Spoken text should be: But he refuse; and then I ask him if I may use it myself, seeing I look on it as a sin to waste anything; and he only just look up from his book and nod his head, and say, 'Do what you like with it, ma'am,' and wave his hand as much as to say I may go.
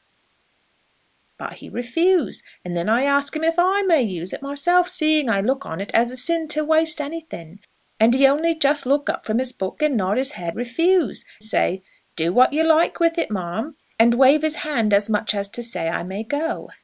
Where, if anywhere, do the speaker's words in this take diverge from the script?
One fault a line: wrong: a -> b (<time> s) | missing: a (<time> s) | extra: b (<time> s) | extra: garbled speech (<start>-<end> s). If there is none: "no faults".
wrong: and -> refuse (10.5 s)